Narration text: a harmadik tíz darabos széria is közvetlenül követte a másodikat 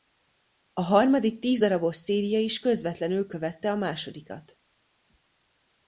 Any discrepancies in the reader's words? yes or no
no